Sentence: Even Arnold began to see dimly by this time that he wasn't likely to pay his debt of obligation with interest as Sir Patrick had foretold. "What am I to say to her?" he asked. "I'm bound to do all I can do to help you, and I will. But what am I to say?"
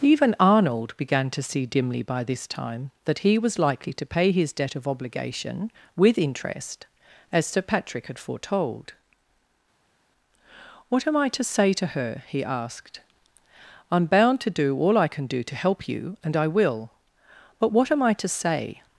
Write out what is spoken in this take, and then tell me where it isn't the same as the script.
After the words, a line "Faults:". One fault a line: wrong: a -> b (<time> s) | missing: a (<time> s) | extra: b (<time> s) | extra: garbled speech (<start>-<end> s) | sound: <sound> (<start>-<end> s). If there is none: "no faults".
Even Arnold began to see dimly by this time that he was likely to pay his debt of obligation with interest as Sir Patrick had foretold. "What am I to say to her?" he asked. "I'm bound to do all I can do to help you, and I will. But what am I to say?"
Faults:
wrong: wasn't -> was (3.4 s)